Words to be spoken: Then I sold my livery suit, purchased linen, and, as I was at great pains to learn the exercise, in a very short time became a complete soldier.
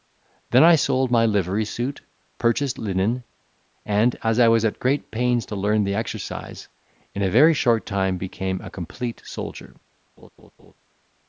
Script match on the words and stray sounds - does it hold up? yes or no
no